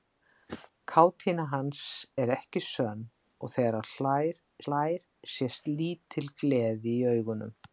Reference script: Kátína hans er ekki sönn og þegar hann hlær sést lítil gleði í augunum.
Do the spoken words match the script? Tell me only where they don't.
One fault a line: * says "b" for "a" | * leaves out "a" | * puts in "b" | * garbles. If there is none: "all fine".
* puts in "hlær"